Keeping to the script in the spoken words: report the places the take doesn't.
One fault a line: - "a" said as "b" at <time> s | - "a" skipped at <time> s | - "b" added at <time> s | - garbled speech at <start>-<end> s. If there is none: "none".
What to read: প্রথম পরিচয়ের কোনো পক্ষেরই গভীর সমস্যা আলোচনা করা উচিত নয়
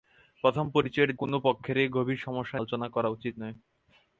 none